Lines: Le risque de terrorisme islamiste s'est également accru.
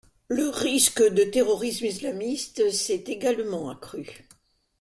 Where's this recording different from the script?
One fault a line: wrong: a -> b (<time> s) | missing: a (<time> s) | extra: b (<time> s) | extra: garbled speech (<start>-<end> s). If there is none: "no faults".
no faults